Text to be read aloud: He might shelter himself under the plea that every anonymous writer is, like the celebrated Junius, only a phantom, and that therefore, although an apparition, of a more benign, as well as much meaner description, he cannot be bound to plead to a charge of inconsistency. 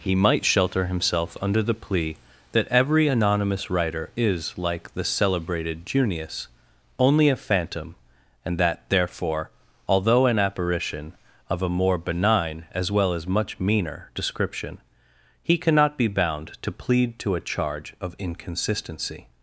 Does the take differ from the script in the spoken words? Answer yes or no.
no